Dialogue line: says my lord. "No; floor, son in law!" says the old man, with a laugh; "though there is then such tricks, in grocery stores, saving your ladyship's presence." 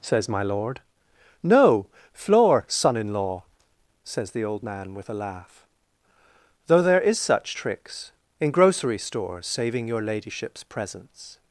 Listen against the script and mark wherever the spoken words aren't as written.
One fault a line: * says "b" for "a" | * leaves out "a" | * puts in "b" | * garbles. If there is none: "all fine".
* leaves out "then"